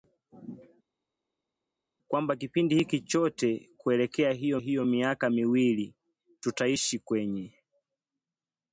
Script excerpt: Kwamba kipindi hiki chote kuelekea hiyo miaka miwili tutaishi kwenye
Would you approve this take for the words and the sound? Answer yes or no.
no